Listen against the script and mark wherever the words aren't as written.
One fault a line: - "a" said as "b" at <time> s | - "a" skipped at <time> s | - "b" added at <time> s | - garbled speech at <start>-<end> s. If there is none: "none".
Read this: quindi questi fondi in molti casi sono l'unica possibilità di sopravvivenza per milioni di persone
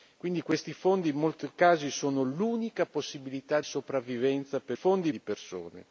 - "di" skipped at 3.6 s
- "milioni" said as "fondi" at 4.7 s